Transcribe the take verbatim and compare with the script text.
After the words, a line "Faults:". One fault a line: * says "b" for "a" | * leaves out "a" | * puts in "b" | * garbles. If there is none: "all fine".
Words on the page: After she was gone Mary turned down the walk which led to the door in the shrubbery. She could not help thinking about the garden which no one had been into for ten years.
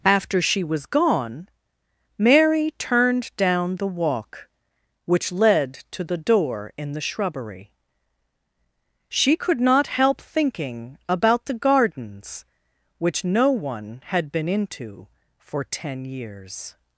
After she was gone Mary turned down the walk which led to the door in the shrubbery. She could not help thinking about the gardens which no one had been into for ten years.
Faults:
* says "gardens" for "garden"